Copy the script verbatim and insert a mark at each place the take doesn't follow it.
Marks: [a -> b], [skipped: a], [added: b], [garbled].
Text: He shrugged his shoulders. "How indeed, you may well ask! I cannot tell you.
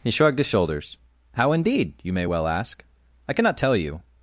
He shrugged his shoulders. "How indeed, you may well ask! I cannot tell you.